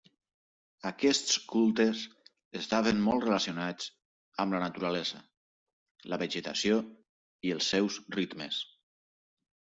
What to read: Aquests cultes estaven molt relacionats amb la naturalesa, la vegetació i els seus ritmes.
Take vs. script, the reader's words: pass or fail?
pass